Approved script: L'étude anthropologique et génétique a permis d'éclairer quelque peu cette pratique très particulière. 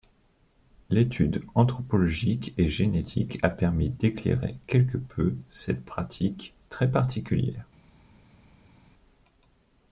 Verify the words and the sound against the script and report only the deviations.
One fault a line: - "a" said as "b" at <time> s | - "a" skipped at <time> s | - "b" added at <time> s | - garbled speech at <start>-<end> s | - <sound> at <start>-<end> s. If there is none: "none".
none